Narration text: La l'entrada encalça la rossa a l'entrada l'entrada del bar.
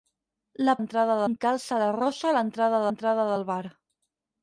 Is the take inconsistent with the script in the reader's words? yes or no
no